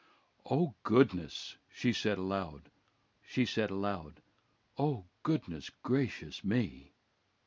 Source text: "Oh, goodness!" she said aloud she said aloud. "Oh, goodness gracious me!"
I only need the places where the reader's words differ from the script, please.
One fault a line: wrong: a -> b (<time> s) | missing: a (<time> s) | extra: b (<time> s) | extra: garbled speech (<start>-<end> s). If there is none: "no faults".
no faults